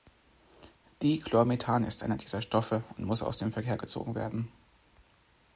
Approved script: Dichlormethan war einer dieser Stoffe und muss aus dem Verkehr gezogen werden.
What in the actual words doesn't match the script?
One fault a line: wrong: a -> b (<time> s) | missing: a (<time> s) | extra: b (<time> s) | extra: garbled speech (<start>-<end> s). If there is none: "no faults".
wrong: war -> ist (1.8 s)